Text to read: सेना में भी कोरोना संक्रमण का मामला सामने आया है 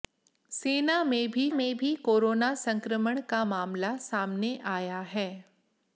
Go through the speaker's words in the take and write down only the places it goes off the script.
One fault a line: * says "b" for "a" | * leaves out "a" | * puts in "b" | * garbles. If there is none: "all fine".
* puts in "में भी"